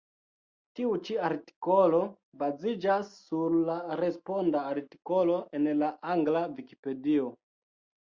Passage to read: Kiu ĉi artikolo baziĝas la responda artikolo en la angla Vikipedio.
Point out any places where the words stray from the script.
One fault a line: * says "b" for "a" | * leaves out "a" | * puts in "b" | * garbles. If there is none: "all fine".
* says "Tiu" for "Kiu"
* puts in "sur"